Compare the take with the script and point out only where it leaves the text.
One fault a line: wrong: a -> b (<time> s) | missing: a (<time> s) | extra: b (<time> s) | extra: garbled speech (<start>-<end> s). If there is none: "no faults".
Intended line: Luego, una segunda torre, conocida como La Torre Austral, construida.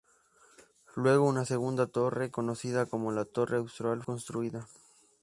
no faults